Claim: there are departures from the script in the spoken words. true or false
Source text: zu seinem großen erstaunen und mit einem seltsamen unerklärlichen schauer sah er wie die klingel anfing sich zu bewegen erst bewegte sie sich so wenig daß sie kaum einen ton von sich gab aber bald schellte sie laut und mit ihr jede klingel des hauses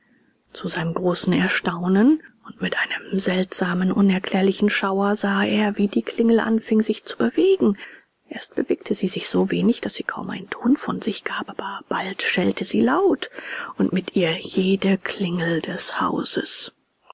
false